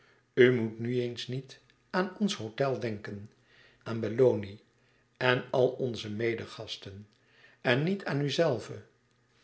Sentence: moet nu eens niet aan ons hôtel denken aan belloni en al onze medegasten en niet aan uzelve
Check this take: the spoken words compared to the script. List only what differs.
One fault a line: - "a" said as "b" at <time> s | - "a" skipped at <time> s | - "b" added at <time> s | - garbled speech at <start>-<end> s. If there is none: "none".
none